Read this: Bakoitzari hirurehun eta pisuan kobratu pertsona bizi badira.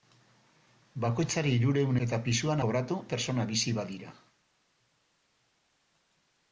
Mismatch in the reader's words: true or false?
false